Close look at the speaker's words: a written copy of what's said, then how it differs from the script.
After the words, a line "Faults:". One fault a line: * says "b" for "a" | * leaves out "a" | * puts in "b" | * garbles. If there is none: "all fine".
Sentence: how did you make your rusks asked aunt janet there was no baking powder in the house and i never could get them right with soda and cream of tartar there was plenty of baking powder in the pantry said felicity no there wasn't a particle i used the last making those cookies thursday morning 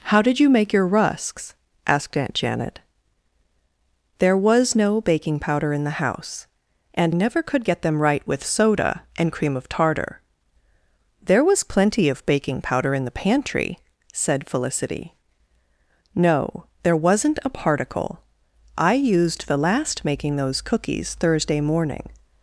how did you make your rusks asked aunt janet there was no baking powder in the house and never could get them right with soda and cream of tartar there was plenty of baking powder in the pantry said felicity no there wasn't a particle i used the last making those cookies thursday morning
Faults:
* leaves out "i"